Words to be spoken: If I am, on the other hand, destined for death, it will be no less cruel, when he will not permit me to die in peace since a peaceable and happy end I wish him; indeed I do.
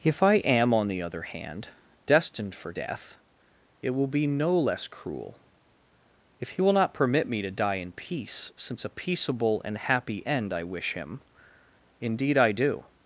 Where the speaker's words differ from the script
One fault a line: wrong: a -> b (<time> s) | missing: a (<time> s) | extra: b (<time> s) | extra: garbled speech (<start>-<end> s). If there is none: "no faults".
wrong: when -> if (6.4 s)